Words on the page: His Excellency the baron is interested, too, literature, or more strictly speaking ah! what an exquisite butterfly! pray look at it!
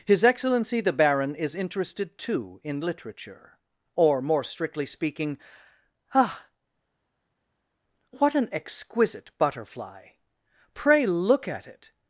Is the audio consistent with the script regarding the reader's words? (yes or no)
no